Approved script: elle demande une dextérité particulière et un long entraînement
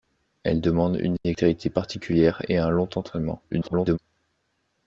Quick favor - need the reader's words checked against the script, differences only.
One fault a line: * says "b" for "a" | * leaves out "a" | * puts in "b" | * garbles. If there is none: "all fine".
* garbles